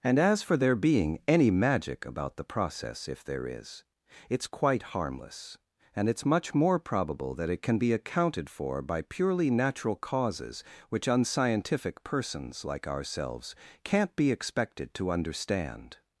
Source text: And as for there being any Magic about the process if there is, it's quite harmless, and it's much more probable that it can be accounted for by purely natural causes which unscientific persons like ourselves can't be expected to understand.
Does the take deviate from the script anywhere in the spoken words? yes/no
no